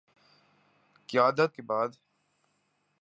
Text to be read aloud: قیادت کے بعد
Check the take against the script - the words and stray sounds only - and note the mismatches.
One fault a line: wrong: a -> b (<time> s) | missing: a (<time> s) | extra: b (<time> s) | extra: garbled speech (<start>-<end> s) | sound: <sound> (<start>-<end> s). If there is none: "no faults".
no faults